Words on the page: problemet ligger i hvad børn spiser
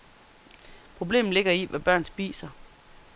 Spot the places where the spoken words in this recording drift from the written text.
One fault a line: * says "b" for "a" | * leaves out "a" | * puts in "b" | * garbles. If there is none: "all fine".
all fine